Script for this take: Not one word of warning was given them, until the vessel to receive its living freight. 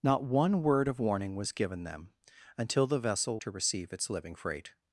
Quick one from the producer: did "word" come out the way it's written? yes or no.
yes